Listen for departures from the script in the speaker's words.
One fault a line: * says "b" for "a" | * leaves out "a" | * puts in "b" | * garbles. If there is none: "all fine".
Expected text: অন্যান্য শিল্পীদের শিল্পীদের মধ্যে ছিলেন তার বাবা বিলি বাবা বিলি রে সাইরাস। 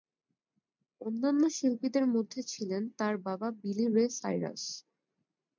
* leaves out "শিল্পীদের"
* leaves out "বাবা বিলি"